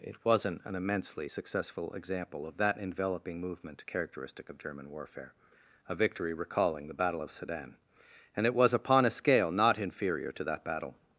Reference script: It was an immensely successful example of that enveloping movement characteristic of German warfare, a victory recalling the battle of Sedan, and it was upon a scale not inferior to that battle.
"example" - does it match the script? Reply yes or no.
yes